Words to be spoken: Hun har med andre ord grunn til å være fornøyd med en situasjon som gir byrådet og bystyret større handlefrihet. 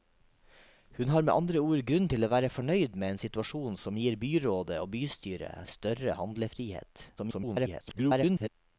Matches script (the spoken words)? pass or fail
fail